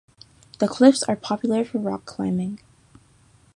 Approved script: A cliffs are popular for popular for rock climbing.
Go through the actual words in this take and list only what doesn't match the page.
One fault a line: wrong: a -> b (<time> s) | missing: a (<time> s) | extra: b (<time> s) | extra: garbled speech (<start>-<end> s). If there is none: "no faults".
wrong: A -> The (0.6 s)
missing: popular for (1.8 s)